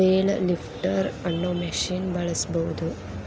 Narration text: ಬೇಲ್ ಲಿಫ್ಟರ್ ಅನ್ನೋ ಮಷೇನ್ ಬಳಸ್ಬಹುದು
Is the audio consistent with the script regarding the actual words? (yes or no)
yes